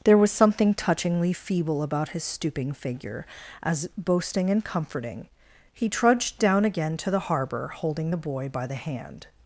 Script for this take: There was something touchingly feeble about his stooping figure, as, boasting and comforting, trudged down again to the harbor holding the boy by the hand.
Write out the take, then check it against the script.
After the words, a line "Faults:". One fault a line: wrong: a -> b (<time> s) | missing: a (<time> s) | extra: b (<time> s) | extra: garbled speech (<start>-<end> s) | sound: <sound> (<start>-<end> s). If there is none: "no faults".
There was something touchingly feeble about his stooping figure, as, boasting and comforting, he trudged down again to the harbor holding the boy by the hand.
Faults:
extra: he (5.7 s)